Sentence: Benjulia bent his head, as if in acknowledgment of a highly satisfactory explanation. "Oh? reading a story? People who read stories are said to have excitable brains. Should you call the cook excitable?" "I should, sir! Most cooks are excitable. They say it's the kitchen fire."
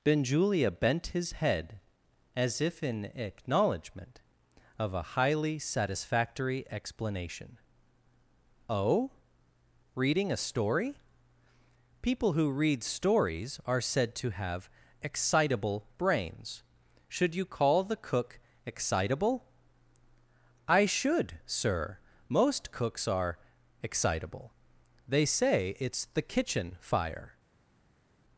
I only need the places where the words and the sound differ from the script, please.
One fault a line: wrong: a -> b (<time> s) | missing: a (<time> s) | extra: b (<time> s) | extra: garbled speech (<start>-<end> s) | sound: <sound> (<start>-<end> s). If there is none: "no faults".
no faults